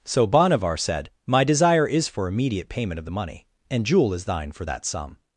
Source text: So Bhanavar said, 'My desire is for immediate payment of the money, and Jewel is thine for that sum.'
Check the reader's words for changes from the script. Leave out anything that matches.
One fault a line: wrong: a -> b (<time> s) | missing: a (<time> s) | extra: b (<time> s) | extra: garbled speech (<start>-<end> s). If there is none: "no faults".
no faults